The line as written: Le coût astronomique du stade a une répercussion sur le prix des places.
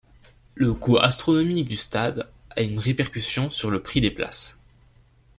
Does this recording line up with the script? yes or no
yes